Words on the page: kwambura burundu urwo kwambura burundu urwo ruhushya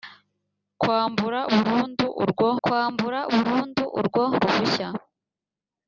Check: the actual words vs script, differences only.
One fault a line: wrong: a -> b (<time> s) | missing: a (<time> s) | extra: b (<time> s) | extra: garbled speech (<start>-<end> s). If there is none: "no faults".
no faults